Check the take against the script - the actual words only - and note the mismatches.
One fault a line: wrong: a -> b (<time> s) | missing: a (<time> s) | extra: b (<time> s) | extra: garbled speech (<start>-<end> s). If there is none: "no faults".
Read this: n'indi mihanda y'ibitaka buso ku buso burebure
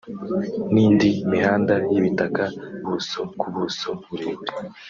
no faults